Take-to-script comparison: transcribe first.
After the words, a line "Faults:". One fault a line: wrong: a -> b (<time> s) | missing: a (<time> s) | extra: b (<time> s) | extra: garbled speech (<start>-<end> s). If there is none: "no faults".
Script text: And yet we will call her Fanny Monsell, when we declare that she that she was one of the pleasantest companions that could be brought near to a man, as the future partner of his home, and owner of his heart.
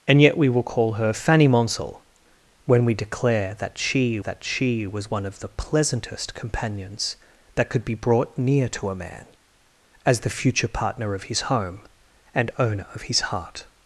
And yet we will call her Fanny Monsell, when we declare that she that she was one of the pleasantest companions that could be brought near to a man, as the future partner of his home, and owner of his heart.
Faults:
no faults